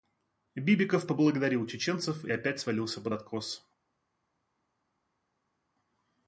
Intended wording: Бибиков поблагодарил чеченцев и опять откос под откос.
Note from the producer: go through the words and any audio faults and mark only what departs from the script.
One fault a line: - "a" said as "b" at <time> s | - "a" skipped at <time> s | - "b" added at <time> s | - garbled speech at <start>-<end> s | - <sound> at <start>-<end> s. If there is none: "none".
- "откос" said as "свалился" at 2.6 s